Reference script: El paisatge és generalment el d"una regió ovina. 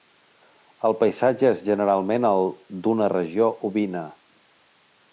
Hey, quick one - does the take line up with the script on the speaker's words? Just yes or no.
yes